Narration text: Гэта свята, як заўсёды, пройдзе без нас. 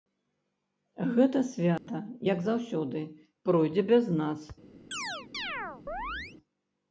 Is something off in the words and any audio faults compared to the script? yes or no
yes